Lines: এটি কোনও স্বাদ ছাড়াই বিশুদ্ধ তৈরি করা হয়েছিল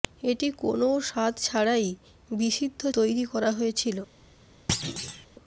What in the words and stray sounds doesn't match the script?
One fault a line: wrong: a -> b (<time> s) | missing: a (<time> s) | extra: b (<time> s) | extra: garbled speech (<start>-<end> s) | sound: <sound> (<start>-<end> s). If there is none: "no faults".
sound: thud (4.7-5.3 s)